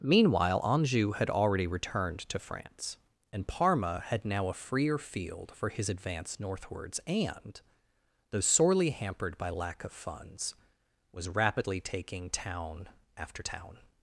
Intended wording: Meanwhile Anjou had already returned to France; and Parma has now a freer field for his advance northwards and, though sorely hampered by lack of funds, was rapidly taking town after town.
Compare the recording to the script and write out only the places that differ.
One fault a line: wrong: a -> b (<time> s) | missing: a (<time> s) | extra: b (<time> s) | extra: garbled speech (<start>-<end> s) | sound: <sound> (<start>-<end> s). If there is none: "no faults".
wrong: has -> had (4.1 s)